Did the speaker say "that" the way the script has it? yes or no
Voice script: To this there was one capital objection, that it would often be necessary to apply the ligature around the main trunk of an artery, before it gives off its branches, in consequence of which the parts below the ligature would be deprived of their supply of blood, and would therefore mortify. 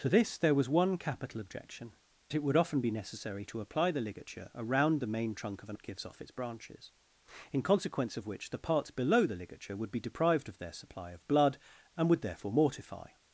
no